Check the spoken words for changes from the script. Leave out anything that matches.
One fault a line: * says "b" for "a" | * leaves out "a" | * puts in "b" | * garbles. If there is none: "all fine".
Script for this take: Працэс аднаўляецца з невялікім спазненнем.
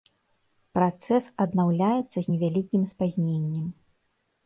all fine